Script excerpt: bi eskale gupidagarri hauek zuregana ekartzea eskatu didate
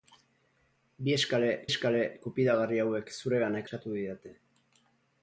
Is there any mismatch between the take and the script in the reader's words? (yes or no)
yes